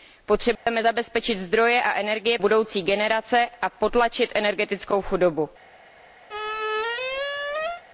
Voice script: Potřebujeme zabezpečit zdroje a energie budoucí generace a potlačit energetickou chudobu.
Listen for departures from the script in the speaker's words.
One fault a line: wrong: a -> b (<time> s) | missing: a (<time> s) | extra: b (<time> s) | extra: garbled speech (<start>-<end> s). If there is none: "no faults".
no faults